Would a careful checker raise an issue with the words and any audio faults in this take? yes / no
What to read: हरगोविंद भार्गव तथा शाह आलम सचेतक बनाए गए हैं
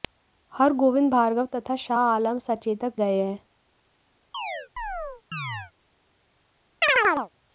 yes